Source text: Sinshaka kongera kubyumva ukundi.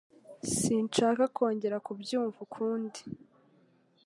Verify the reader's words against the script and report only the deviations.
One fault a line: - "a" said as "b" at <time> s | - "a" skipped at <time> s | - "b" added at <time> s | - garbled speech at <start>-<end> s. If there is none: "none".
none